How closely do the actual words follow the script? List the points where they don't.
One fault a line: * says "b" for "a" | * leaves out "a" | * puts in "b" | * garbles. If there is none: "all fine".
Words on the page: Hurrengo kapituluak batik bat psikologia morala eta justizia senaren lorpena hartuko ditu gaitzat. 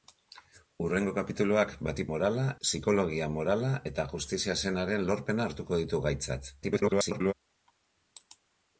* says "morala" for "bat"
* garbles